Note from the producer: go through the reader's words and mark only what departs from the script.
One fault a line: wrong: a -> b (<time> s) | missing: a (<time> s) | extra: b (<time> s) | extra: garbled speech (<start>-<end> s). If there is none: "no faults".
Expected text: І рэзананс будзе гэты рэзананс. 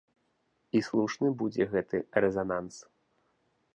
wrong: рэзананс -> слушны (0.8 s)